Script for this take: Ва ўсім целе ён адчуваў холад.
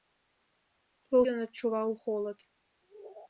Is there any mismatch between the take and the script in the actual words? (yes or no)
yes